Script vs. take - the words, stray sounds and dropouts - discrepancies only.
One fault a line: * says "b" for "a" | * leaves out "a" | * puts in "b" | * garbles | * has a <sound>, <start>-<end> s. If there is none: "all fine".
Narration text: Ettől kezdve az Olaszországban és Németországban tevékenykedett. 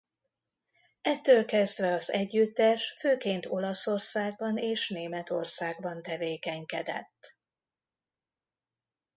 * puts in "együttes főként"